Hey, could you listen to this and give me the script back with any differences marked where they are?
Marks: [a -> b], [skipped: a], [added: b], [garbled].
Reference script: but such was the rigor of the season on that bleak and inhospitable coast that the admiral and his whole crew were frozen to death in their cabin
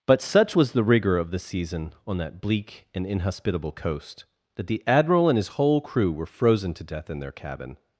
but such was the rigor of the season on that bleak and inhospitable coast that the admiral and his whole crew were frozen to death in their cabin